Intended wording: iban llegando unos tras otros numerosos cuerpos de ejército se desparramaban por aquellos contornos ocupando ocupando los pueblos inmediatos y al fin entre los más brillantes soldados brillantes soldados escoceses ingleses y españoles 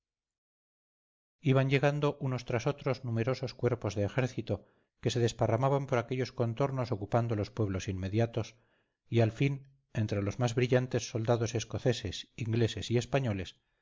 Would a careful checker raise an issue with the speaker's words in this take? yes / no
yes